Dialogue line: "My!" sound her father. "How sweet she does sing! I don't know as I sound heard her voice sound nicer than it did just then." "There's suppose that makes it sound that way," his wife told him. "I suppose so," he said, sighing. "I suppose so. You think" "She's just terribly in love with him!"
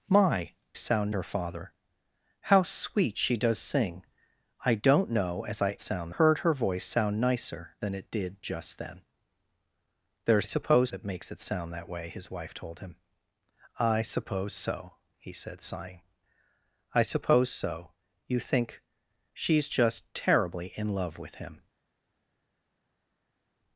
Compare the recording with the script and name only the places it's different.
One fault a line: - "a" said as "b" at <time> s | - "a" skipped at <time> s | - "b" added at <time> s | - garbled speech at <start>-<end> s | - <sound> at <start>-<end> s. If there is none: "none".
none